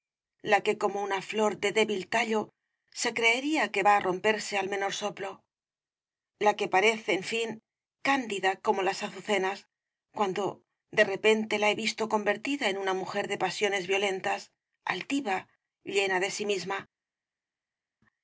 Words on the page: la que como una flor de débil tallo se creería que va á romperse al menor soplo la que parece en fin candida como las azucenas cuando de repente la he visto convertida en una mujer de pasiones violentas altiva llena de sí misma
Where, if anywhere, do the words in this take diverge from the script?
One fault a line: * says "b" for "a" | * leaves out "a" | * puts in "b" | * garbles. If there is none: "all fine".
all fine